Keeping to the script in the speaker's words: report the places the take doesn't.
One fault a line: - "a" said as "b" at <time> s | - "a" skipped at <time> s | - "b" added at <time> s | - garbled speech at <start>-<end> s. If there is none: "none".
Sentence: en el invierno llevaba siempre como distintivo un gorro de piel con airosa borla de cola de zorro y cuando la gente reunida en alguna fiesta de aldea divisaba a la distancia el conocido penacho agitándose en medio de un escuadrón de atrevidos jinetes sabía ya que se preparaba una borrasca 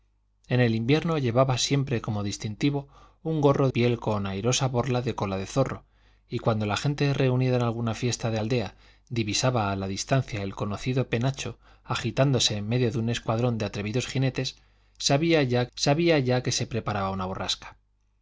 - "de" skipped at 3.7 s
- "sabía ya" added at 15.7 s